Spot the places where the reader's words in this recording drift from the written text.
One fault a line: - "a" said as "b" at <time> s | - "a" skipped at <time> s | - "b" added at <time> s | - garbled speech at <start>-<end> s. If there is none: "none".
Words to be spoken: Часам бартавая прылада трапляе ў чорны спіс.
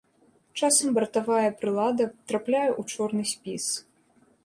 none